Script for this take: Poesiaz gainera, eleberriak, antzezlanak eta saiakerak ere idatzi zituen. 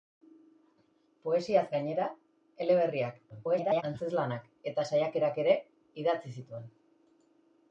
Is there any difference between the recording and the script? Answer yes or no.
yes